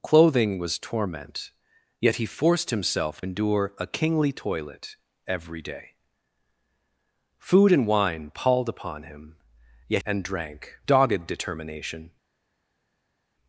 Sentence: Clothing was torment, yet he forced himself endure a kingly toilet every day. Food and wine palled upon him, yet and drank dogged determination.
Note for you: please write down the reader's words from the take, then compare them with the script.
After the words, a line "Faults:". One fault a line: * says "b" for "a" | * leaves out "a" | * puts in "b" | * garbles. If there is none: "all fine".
Clothing was torment, yet he forced himself endure a kingly toilet every day. Food and wine palled upon him, yet and drank dogged determination.
Faults:
all fine